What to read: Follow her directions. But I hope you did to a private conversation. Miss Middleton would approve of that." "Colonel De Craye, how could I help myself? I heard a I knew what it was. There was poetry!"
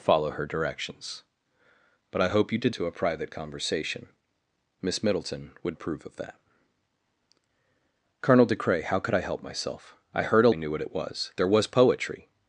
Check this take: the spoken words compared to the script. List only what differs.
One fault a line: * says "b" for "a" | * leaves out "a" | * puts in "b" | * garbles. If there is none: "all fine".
all fine